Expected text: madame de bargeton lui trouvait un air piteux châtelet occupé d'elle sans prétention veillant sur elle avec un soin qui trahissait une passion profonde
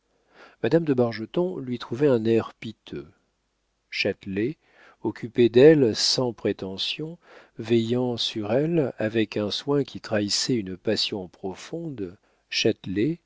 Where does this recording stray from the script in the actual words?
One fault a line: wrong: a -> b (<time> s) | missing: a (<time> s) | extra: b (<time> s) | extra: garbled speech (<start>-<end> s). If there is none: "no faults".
no faults